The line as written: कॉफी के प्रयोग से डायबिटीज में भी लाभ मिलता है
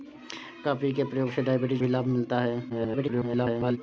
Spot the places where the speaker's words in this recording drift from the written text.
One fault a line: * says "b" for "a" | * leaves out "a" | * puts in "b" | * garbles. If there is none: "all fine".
* leaves out "में"
* garbles